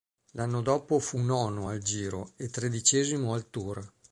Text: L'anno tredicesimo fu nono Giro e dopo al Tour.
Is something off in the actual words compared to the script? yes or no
yes